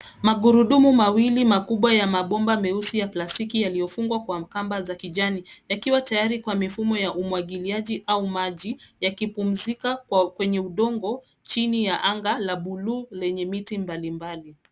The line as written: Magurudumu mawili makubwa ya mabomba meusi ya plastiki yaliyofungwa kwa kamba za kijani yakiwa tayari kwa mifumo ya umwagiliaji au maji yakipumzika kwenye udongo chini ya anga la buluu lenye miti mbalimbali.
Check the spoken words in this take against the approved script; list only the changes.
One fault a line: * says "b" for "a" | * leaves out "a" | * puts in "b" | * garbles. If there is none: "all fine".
all fine